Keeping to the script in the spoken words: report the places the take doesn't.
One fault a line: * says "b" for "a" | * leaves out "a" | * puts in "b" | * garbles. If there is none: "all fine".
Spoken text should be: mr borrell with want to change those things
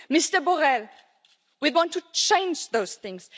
all fine